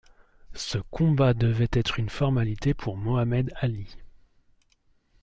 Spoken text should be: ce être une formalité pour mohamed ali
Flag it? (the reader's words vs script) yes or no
yes